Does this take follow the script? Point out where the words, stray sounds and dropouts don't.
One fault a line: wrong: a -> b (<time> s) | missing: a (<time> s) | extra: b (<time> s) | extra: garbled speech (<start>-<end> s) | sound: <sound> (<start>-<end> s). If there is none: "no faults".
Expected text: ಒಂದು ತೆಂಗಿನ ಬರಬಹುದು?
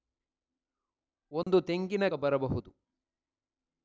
sound: dropout (1.4-1.5 s)